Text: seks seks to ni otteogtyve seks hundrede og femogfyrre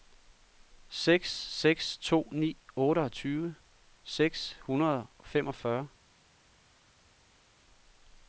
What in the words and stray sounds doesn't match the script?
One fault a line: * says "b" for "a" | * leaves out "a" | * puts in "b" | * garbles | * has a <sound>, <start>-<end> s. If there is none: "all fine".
all fine